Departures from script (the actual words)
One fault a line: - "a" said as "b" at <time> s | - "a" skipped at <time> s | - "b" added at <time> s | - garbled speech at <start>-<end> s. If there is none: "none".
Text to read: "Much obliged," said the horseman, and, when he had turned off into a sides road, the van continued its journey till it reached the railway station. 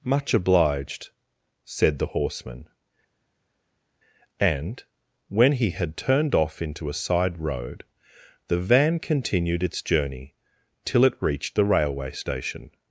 - "sides" said as "side" at 6.9 s